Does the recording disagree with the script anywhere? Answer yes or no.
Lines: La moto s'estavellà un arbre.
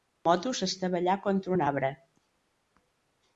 yes